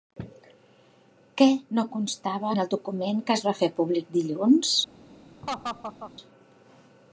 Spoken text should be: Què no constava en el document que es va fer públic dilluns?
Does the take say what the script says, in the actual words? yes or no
yes